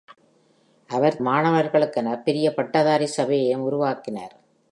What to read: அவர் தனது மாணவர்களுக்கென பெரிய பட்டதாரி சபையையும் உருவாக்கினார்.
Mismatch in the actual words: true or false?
true